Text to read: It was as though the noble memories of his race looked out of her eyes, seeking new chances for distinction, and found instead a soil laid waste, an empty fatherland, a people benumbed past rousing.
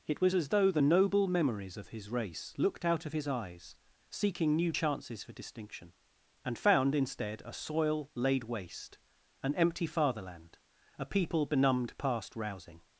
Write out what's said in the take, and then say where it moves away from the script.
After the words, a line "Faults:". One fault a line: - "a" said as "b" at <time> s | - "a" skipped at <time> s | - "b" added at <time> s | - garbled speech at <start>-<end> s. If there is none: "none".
It was as though the noble memories of his race looked out of his eyes, seeking new chances for distinction, and found instead a soil laid waste, an empty fatherland, a people benumbed past rousing.
Faults:
- "her" said as "his" at 3.1 s